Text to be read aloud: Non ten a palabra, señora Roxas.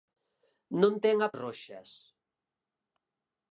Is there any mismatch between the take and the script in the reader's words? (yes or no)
yes